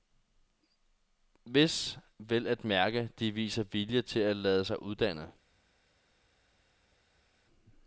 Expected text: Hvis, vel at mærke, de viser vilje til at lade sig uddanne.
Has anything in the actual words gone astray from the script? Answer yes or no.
no